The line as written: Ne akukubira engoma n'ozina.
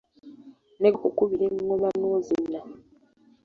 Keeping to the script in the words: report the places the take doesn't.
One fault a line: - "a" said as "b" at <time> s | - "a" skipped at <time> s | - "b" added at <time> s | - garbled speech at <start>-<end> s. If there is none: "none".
none